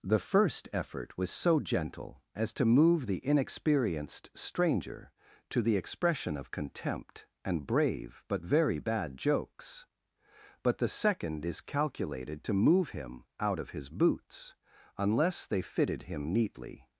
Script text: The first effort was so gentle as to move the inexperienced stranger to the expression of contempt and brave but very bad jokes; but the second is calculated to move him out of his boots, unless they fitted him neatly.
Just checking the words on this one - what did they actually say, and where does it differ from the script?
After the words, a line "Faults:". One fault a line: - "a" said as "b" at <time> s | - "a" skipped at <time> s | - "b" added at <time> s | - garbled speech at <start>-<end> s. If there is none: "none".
The first effort was so gentle as to move the inexperienced stranger to the expression of contempt and brave but very bad jokes; but the second is calculated to move him out of his boots, unless they fitted him neatly.
Faults:
none